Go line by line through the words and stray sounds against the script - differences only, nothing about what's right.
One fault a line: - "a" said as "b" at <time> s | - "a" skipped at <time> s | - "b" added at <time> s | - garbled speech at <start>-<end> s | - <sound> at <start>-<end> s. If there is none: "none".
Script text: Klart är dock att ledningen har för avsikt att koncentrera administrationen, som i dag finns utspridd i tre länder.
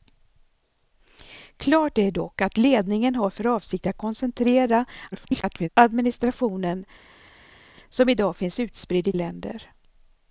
- garbled speech at 5.1-5.7 s
- "tre" skipped at 9.1 s